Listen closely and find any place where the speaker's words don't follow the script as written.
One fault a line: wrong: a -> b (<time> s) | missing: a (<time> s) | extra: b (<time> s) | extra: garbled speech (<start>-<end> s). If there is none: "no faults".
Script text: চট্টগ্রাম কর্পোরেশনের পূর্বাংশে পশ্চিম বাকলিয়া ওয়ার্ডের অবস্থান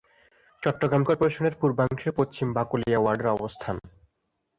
no faults